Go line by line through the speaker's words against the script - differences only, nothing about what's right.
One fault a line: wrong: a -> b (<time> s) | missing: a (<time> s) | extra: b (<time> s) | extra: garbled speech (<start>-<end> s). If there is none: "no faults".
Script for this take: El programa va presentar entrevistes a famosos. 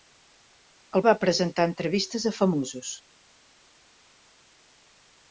missing: programa (1.0 s)